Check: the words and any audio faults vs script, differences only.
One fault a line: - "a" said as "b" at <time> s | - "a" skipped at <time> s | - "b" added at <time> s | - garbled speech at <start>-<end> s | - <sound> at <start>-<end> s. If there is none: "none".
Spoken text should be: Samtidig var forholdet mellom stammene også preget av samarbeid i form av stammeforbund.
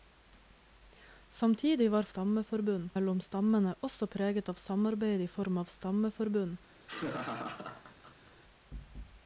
- "forholdet" said as "stammeforbund" at 2.1 s
- laugh at 6.8-8.3 s